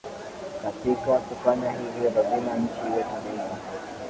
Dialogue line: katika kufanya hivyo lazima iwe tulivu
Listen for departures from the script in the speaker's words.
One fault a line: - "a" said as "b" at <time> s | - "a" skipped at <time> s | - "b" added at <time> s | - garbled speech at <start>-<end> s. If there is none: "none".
- "nchi" added at 2.6 s